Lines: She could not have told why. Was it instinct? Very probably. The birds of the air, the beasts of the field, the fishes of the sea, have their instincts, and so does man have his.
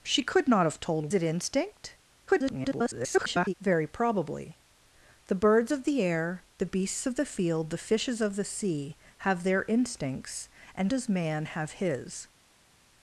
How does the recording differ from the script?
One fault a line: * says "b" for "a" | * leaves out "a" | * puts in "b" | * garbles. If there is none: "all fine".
* leaves out "why Was"
* garbles
* leaves out "so"